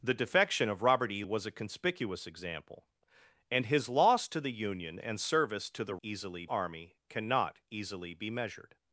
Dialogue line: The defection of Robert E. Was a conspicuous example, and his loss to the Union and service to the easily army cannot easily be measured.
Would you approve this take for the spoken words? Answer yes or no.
yes